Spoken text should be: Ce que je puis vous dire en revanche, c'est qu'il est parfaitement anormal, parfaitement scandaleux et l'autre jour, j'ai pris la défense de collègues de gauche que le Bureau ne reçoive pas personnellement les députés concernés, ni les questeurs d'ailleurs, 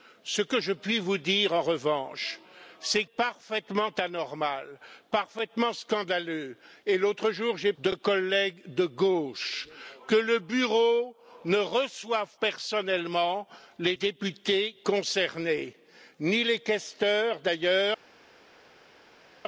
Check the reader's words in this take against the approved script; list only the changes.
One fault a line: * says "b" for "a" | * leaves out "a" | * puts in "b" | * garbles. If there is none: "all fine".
* leaves out "qu'il est"
* leaves out "pris la défense"
* leaves out "pas"